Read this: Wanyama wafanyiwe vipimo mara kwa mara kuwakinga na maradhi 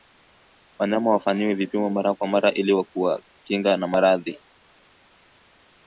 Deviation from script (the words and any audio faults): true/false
true